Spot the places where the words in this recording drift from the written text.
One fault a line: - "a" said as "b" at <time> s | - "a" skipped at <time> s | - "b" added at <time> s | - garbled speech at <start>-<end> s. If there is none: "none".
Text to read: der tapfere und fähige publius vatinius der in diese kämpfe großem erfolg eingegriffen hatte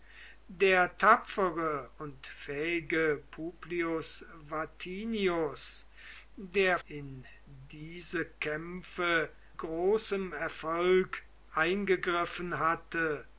none